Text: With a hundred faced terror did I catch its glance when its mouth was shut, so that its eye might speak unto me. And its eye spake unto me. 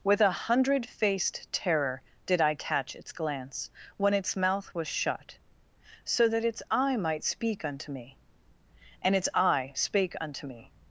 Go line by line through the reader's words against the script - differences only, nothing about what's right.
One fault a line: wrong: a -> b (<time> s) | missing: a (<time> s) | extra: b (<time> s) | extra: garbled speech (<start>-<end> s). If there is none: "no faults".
no faults